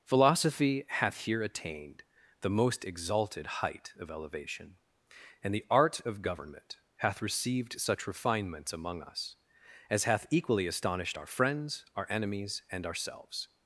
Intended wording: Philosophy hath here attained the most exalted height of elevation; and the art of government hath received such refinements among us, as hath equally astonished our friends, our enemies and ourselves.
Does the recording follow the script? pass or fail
pass